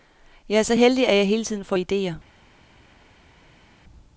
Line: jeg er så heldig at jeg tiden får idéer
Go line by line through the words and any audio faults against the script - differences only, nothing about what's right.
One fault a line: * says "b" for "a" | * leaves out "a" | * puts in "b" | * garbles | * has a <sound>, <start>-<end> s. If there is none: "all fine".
* puts in "hele"